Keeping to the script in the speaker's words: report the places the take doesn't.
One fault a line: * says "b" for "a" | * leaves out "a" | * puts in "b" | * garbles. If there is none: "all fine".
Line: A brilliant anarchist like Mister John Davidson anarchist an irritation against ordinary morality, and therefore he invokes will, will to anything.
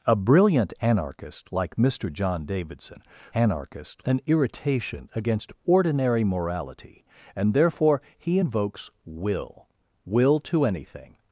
all fine